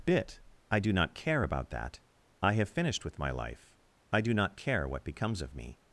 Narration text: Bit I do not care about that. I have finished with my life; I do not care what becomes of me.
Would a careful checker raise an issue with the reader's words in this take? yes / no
no